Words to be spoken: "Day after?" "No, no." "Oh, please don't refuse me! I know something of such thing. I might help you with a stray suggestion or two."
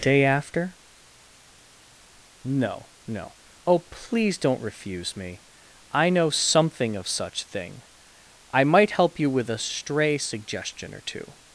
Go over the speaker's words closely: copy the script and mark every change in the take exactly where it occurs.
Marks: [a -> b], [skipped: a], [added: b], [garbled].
"Day after?" "No, no." "Oh, please don't refuse me! I know something of such thing. I might help you with a stray suggestion or two."